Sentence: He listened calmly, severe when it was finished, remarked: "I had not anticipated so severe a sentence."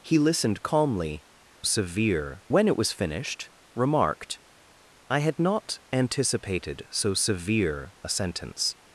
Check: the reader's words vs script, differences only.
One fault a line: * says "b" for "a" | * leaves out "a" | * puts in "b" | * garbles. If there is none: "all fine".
all fine